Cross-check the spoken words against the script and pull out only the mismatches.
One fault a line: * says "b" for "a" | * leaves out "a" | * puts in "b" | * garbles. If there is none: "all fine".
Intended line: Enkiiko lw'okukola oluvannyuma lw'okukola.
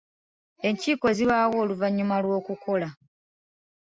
* says "zibaawo" for "lw'okukola"